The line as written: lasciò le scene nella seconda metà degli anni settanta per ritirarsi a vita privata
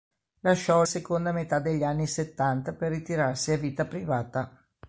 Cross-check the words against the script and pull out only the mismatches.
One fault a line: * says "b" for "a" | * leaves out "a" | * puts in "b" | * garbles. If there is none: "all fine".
* leaves out "le scene nella"